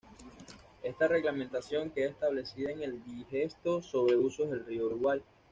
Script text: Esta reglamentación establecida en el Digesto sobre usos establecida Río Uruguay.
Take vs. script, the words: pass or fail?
fail